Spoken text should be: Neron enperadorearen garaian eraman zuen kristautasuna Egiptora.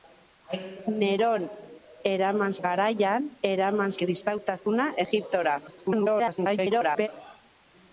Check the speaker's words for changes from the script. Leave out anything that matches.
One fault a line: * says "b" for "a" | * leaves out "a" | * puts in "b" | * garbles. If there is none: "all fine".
* says "eraman" for "enperadorearen"
* leaves out "zuen"
* garbles